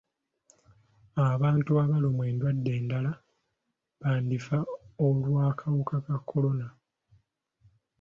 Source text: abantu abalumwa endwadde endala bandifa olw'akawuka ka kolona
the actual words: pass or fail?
pass